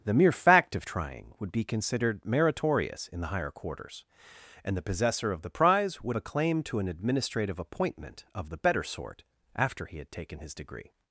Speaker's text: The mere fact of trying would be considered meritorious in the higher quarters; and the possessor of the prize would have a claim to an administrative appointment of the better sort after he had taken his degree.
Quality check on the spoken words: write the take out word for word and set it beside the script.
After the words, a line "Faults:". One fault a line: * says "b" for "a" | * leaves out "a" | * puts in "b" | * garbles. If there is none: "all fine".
The mere fact of trying would be considered meritorious in the higher quarters; and the possessor of the prize would a claim to an administrative appointment of the better sort after he had taken his degree.
Faults:
* leaves out "have"